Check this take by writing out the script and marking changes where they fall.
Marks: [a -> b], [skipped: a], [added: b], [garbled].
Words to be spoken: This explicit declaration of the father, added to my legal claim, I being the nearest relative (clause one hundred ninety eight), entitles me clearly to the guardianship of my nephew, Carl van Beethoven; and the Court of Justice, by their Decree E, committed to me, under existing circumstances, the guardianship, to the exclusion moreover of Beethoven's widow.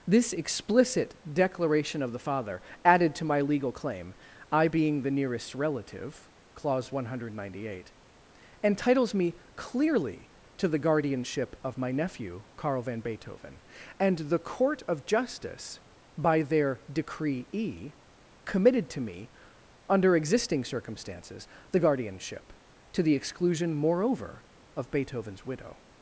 This explicit declaration of the father, added to my legal claim, I being the nearest relative (clause one hundred ninety eight), entitles me clearly to the guardianship of my nephew, Carl van Beethoven; and the Court of Justice, by their Decree E, committed to me, under existing circumstances, the guardianship, to the exclusion moreover of Beethoven's widow.